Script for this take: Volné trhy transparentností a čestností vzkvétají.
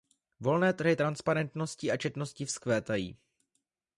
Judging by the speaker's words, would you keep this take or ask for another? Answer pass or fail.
pass